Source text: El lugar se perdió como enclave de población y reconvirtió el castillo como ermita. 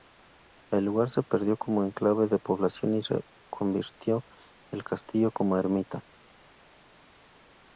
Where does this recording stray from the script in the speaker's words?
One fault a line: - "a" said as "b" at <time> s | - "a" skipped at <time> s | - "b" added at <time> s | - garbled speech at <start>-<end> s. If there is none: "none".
none